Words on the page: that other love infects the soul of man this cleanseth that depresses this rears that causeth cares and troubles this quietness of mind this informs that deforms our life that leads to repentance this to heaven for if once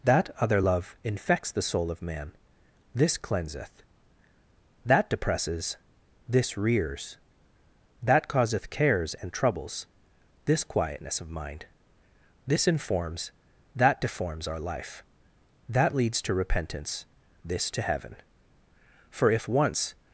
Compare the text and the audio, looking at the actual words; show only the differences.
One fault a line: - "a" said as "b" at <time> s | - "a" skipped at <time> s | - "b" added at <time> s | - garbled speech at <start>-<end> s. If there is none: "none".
none